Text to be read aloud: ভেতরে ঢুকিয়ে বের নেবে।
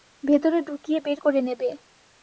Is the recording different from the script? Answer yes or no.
yes